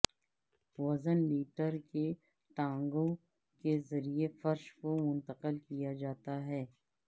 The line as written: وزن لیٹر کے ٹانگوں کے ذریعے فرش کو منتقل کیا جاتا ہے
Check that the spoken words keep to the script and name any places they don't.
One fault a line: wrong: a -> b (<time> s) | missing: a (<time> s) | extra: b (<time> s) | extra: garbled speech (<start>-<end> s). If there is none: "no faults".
no faults